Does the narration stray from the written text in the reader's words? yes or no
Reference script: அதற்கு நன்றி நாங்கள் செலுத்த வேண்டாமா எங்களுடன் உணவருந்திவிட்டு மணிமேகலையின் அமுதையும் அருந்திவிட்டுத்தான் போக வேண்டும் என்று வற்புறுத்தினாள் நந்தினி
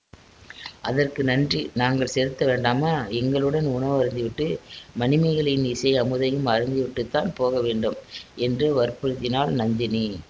yes